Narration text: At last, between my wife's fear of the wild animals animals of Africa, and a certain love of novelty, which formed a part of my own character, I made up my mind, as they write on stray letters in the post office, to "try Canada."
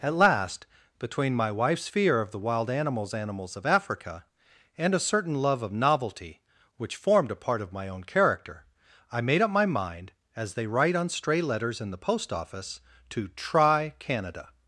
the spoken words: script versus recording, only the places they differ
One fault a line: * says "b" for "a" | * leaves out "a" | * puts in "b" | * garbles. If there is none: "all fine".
all fine